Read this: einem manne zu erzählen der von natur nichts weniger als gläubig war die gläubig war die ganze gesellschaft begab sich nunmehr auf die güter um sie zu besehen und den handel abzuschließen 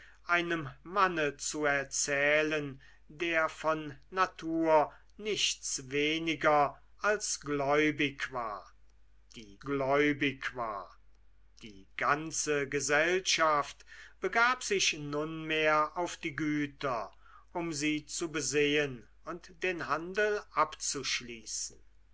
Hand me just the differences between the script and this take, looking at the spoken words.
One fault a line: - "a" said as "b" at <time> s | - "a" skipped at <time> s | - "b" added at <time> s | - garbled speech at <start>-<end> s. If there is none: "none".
none